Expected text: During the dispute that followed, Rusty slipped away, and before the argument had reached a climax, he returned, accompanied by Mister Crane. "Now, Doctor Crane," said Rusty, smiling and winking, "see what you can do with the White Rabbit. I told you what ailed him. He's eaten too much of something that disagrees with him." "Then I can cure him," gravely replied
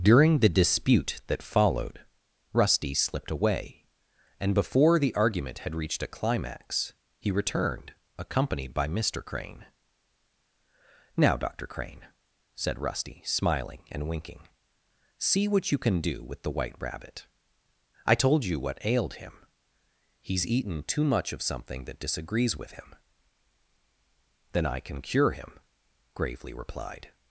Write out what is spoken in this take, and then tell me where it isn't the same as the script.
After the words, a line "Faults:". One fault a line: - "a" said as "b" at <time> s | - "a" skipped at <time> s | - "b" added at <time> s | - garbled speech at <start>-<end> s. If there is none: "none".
During the dispute that followed, Rusty slipped away, and before the argument had reached a climax, he returned, accompanied by Mister Crane. "Now, Doctor Crane," said Rusty, smiling and winking, "see what you can do with the White Rabbit. I told you what ailed him. He's eaten too much of something that disagrees with him." "Then I can cure him," gravely replied
Faults:
none